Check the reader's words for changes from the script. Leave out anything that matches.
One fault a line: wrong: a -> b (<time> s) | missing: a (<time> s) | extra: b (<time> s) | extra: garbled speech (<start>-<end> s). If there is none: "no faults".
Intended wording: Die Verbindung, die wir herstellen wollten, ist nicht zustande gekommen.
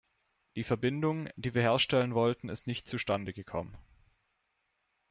no faults